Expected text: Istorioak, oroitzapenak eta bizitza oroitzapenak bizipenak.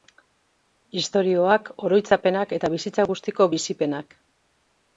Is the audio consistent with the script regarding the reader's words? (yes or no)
no